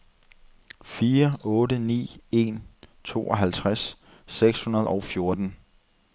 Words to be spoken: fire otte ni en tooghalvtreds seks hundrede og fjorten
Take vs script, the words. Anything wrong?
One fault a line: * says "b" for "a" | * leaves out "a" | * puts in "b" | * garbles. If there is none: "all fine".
all fine